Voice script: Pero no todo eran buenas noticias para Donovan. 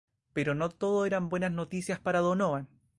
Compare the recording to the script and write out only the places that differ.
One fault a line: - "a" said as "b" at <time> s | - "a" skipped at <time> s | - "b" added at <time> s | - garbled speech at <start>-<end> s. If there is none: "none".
none